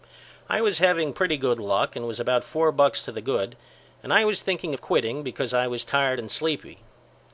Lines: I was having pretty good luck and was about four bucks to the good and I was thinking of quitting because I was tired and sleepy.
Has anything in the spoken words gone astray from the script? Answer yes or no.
no